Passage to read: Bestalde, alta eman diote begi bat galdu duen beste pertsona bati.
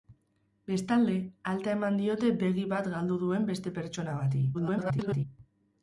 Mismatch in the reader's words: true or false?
true